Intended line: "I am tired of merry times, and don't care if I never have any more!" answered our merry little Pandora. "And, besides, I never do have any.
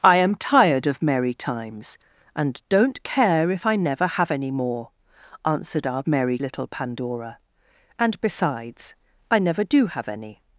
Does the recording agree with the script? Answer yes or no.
yes